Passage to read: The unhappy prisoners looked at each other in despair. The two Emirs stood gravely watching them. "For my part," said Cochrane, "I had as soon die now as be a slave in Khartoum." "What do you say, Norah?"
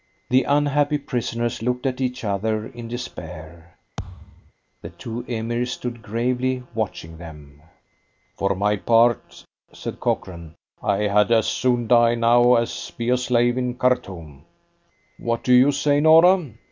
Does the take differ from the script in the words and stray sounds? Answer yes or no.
yes